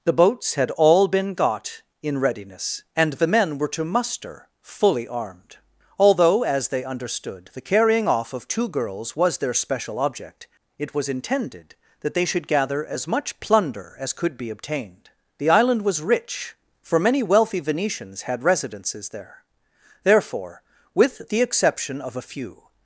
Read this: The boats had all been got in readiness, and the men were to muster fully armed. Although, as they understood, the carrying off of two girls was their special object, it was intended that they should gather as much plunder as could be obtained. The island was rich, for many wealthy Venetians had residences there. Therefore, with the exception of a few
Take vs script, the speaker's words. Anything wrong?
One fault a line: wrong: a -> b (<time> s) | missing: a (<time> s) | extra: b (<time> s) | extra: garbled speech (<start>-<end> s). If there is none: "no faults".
no faults